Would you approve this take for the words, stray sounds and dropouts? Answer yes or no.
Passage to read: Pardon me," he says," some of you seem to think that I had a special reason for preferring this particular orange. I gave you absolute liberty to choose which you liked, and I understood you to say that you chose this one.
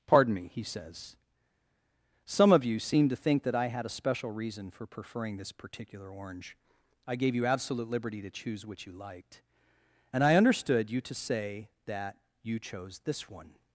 yes